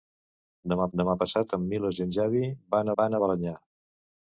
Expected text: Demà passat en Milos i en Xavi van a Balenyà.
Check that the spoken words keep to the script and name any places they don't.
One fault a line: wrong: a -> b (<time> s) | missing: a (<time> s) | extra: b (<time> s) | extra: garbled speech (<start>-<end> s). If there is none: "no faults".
extra: demà (1.0 s)
extra: van (3.0 s)